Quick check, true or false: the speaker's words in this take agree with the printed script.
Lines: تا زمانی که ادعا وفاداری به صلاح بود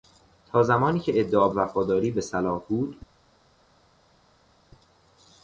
true